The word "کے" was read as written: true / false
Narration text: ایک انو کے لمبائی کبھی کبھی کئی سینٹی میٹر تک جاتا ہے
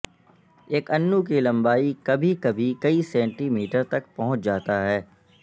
false